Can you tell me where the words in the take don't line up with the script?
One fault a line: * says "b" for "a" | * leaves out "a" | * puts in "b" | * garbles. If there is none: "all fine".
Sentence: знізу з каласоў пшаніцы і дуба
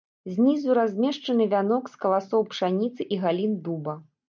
* puts in "размешчаны вянок"
* puts in "галін"